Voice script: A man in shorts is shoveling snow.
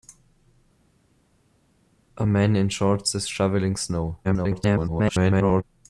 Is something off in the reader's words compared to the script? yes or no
yes